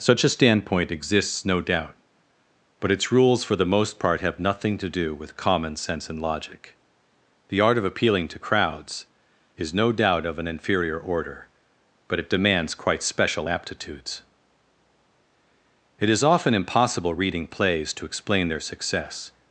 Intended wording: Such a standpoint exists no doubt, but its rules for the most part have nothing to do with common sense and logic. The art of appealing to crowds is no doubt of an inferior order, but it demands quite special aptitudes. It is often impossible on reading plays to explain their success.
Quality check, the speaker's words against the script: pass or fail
fail